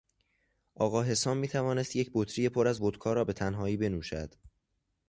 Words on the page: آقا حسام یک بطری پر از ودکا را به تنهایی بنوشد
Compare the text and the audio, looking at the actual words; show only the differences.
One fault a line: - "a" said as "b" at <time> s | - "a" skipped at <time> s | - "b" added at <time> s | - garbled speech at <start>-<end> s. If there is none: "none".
- "میتوانست" added at 1.4 s